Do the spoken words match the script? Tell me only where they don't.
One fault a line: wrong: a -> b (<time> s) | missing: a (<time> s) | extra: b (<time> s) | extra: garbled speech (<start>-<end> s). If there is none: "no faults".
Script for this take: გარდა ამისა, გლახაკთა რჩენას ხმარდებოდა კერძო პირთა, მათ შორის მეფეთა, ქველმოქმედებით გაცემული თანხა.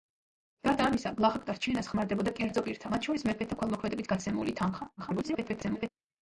extra: garbled speech (5.0-5.9 s)